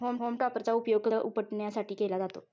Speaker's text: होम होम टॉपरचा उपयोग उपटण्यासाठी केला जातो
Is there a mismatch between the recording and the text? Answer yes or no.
no